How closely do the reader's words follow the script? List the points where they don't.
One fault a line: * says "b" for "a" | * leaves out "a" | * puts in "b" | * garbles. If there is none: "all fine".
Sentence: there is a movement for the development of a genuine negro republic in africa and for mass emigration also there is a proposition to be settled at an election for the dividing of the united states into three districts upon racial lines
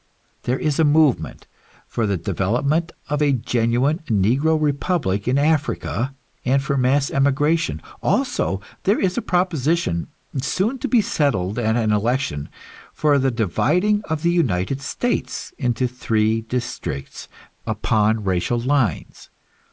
* puts in "soon"